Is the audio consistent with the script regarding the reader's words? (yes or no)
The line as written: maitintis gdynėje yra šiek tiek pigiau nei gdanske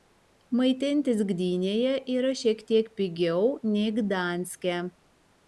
yes